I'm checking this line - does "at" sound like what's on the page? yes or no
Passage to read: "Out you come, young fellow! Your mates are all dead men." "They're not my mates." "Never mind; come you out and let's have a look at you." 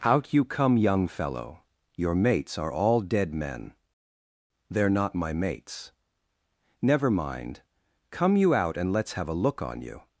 no